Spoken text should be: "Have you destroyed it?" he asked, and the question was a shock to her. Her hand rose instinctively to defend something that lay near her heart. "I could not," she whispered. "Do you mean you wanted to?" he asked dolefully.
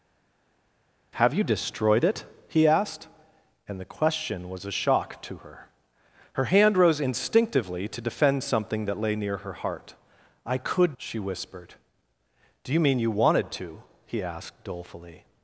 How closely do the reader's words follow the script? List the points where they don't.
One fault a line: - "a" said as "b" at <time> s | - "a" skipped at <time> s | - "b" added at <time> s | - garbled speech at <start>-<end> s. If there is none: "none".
- "not" skipped at 11.0 s